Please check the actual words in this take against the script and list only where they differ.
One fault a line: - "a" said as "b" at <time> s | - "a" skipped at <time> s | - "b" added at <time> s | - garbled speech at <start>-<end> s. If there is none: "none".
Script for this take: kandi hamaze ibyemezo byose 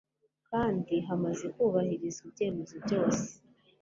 - "kubahirizwa" added at 1.5 s